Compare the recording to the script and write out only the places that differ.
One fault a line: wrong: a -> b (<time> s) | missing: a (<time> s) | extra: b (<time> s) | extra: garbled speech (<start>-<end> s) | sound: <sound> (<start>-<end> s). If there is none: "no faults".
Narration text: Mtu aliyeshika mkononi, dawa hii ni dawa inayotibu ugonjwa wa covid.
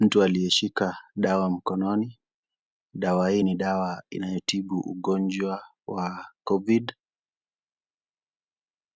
extra: dawa (1.2 s)